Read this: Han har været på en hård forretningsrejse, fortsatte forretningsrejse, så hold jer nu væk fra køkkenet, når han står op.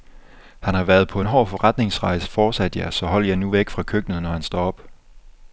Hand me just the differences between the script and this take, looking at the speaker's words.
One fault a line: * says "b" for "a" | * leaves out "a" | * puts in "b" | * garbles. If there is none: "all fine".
* says "jeg" for "forretningsrejse"